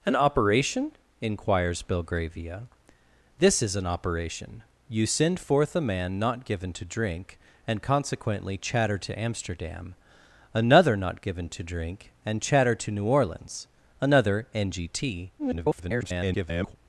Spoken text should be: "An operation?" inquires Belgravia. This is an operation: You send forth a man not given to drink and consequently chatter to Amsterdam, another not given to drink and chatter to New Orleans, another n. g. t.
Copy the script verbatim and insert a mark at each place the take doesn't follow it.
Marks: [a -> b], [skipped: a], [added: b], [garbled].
"An operation?" inquires Belgravia. This is an operation: You send forth a man not given to drink and consequently chatter to Amsterdam, another not given to drink and chatter to New Orleans, another n. g. t. [garbled]